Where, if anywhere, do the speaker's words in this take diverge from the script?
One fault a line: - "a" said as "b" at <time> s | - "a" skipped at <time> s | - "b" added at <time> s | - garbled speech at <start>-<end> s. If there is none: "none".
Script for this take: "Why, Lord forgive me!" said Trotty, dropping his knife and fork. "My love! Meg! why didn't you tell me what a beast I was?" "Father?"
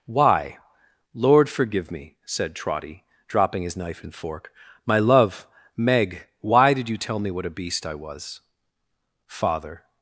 - "didn't" said as "did" at 6.7 s